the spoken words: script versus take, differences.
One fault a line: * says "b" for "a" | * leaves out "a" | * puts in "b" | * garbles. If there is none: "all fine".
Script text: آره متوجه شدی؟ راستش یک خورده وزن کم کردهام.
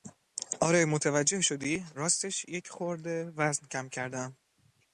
all fine